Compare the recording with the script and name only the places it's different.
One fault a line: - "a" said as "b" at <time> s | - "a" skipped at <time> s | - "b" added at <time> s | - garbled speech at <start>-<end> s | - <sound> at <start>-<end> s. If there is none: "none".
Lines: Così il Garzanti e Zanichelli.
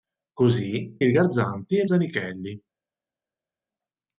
none